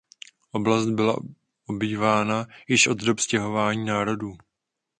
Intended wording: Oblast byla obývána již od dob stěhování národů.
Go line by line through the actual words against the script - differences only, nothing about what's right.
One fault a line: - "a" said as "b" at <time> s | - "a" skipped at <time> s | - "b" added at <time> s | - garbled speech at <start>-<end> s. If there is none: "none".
none